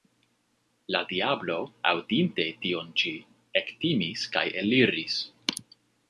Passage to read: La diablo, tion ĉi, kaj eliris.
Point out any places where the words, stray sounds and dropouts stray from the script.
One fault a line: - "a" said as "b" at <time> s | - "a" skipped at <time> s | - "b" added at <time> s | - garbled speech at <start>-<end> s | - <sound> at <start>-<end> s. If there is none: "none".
- "aŭdinte" added at 1.9 s
- "ektimis" added at 3.6 s